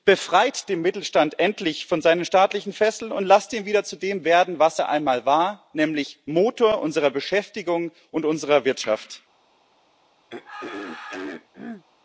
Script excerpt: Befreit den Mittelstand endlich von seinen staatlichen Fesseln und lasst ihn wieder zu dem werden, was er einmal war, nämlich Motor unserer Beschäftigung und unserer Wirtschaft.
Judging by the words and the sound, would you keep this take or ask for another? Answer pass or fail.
fail